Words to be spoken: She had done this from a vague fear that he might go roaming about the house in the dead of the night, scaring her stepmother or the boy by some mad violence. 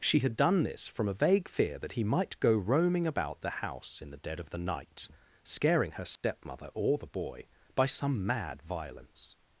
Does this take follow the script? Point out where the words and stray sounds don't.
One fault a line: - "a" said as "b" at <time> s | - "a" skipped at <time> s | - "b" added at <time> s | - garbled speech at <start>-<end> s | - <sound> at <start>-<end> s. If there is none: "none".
- dropout at 6.2-6.2 s